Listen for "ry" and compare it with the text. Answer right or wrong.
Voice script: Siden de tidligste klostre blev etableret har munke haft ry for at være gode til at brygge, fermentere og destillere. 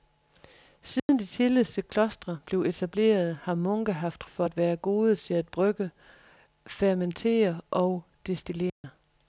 wrong